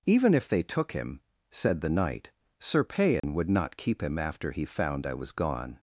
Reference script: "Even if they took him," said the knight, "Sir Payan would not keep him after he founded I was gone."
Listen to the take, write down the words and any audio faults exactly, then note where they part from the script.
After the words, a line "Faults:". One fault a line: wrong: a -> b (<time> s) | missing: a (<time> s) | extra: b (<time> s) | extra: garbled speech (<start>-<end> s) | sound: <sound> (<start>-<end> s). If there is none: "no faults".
"Even if they took him," said the knight, "Sir Payan would not keep him after he found I was gone."
Faults:
sound: dropout (3.2-3.2 s)
wrong: founded -> found (4.7 s)